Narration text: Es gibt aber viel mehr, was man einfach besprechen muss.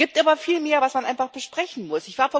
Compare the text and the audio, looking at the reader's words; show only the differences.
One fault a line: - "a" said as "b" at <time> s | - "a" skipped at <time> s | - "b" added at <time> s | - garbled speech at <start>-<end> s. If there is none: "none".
none